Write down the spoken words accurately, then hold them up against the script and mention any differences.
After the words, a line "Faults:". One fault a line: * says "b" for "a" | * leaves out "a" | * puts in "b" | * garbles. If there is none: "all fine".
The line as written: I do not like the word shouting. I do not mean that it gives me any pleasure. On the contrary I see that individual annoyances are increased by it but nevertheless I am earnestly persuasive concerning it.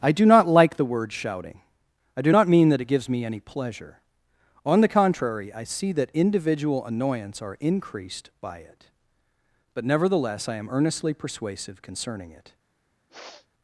I do not like the word shouting. I do not mean that it gives me any pleasure. On the contrary I see that individual annoyance are increased by it but nevertheless I am earnestly persuasive concerning it.
Faults:
* says "annoyance" for "annoyances"